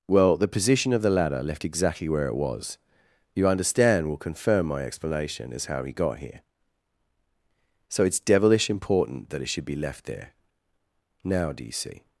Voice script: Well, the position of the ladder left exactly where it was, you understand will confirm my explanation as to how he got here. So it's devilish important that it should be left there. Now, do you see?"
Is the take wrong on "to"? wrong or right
wrong